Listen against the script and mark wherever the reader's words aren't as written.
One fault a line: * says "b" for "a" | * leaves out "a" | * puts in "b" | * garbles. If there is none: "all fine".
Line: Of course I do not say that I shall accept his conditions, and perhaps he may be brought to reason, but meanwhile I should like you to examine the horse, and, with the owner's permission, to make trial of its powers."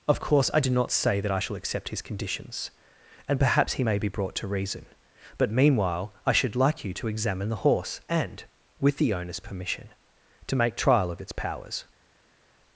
all fine